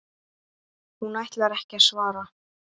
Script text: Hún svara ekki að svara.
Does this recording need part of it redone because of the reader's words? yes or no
yes